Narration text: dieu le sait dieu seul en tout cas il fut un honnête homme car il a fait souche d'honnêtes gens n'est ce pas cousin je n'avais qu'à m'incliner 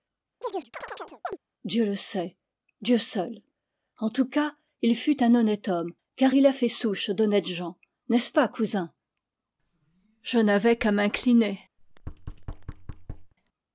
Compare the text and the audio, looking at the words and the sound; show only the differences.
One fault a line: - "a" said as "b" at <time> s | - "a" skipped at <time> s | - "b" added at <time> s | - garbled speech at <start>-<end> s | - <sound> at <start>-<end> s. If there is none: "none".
- chirp at 0.4-1.4 s
- thud at 11.8-13.3 s